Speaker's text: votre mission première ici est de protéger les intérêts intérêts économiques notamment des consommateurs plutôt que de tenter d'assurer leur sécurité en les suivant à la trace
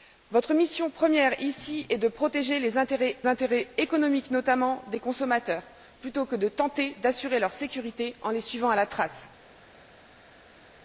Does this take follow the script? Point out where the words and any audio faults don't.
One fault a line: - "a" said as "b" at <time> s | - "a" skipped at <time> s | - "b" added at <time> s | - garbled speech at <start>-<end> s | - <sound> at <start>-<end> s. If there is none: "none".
none